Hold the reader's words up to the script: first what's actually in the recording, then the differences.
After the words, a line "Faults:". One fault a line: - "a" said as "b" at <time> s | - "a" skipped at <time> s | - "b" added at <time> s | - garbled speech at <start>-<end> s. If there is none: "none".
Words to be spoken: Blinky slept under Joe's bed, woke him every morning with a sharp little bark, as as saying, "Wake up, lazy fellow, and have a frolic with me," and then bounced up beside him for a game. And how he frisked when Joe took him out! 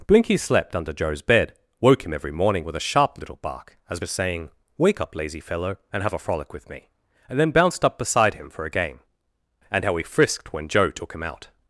Blinky slept under Joe's bed, woke him every morning with a sharp little bark, as as saying, "Wake up, lazy fellow, and have a frolic with me," and then bounced up beside him for a game. And how he frisked when Joe took him out!
Faults:
none